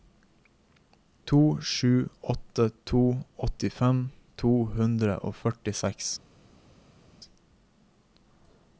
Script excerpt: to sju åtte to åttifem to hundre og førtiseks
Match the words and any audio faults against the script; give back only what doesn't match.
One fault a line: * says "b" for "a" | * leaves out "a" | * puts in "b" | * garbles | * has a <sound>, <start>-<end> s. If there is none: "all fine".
all fine